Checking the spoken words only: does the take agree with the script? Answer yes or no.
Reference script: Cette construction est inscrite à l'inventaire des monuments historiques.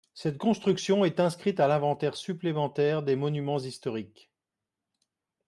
no